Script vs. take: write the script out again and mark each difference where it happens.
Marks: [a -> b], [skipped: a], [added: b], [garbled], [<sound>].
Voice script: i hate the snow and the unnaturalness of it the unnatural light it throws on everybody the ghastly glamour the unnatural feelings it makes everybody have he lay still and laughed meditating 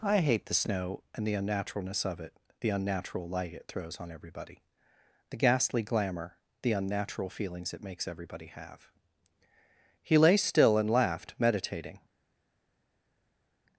i hate the snow and the unnaturalness of it the unnatural light it throws on everybody the ghastly glamour the unnatural feelings it makes everybody have he lay still and laughed meditating